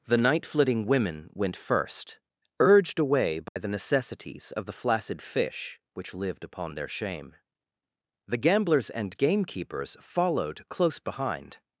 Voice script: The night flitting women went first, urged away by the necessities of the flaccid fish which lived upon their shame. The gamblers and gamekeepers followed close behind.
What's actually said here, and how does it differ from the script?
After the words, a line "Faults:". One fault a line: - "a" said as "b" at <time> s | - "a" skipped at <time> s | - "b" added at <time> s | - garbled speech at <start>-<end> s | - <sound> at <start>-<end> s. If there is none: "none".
The night flitting women went first, urged away by the necessities of the flaccid fish which lived upon their shame. The gamblers and gamekeepers followed close behind.
Faults:
- dropout at 3.5-3.6 s